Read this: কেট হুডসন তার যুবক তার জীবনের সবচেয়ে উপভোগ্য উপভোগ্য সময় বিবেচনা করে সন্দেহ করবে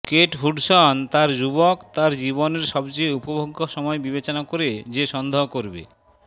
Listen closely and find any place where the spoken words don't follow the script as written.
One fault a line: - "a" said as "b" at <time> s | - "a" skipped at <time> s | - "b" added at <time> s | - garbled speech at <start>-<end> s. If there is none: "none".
- "উপভোগ্য" skipped at 3.6 s
- "যে" added at 4.9 s